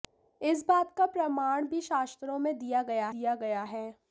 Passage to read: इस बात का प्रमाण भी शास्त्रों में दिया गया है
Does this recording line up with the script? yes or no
no